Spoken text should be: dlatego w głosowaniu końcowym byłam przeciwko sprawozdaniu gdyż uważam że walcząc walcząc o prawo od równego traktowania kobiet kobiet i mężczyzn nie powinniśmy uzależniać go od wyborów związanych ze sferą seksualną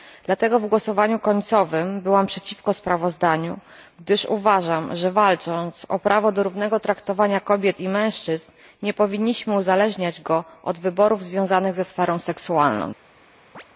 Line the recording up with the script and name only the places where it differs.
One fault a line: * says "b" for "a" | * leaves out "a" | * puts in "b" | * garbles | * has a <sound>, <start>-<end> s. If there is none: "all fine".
* leaves out "walcząc"
* says "do" for "od"
* leaves out "kobiet"
* has a chirp, 13.5-13.6 s